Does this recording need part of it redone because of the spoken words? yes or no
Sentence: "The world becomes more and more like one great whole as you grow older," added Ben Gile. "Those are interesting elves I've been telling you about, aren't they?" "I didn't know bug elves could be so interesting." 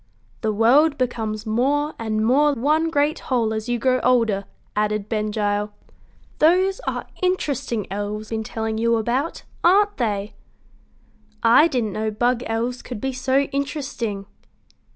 yes